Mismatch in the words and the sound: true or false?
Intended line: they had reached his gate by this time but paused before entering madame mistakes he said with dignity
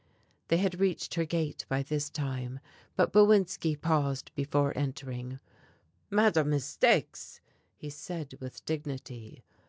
true